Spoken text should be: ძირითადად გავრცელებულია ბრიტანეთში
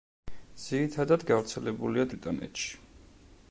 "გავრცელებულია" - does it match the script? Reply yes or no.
yes